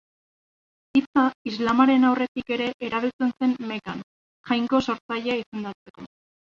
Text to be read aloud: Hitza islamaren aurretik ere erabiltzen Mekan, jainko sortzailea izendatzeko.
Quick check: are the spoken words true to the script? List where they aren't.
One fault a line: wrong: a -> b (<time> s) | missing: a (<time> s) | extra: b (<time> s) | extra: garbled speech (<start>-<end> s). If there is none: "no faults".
extra: zen (3.4 s)